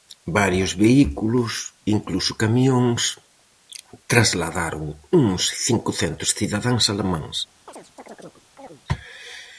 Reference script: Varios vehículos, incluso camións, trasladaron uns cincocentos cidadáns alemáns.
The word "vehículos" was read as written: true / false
true